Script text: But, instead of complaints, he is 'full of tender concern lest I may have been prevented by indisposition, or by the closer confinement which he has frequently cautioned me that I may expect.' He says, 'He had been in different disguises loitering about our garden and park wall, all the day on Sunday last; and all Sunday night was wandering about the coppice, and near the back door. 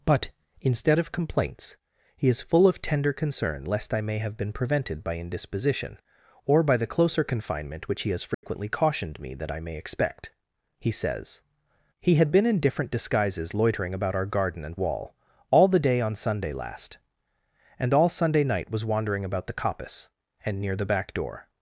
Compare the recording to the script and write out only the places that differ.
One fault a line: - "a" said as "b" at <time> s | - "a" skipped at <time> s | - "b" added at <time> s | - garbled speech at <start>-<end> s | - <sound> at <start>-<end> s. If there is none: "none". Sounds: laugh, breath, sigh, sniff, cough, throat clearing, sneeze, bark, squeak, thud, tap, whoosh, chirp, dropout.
- dropout at 8.3-8.4 s
- "park" skipped at 14.8 s